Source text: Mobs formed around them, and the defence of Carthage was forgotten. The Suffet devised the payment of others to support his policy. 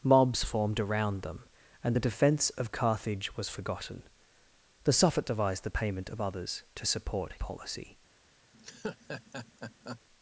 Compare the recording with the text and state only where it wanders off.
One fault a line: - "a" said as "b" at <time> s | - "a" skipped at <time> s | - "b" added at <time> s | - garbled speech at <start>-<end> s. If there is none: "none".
- "his" skipped at 7.3 s